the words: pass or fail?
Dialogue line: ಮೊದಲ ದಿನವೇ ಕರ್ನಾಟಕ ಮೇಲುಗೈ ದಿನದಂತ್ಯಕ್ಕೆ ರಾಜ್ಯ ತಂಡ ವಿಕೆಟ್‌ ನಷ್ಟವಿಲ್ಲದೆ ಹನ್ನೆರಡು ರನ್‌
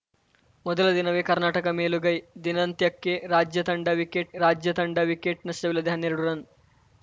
fail